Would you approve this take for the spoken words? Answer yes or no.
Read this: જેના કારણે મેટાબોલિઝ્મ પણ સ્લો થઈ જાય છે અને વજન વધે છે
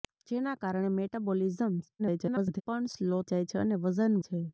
no